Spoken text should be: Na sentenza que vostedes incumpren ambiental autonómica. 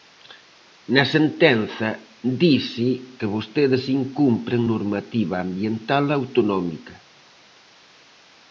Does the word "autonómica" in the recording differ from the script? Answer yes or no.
no